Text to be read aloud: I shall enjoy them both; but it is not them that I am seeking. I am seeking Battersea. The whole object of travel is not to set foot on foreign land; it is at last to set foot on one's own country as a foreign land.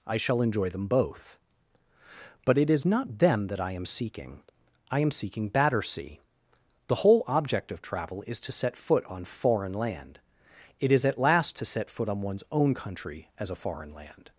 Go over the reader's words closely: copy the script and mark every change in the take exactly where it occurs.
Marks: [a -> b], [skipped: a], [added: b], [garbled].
I shall enjoy them both; but it is not them that I am seeking. I am seeking Battersea. The whole object of travel is [skipped: not] to set foot on foreign land; it is at last to set foot on one's own country as a foreign land.